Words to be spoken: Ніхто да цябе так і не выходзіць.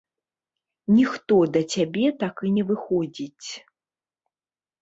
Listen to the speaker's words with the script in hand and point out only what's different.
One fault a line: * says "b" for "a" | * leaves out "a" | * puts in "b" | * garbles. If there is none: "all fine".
all fine